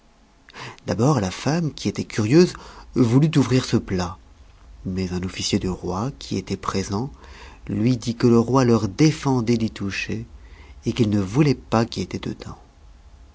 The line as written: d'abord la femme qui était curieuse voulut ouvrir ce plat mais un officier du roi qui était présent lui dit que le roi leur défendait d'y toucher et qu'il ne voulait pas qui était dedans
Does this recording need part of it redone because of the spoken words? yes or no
no